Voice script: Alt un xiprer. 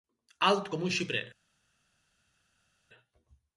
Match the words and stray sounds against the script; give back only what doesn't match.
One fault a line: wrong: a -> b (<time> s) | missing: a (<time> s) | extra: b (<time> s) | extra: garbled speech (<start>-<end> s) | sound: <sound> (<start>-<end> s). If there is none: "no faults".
extra: com (0.7 s)